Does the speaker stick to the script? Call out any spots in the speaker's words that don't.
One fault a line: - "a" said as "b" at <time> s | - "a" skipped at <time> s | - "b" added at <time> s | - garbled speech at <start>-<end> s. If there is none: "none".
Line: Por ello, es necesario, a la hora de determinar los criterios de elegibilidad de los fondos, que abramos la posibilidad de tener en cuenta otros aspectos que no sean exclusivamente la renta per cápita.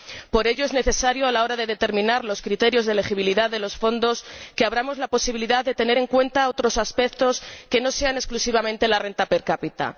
none